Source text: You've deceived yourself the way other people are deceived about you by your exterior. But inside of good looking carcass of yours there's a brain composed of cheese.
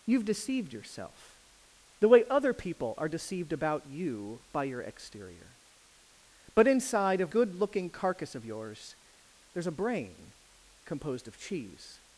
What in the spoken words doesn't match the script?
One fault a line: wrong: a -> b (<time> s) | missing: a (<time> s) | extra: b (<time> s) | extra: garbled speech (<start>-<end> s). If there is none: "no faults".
no faults